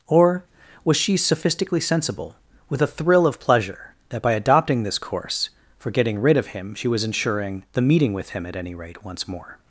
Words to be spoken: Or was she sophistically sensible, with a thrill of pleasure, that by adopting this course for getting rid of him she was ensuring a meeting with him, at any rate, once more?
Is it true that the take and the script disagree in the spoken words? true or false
true